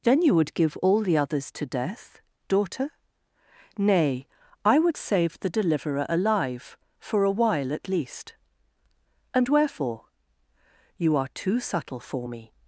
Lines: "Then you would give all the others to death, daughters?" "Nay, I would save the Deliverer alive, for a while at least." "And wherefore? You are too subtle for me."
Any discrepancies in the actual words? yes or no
yes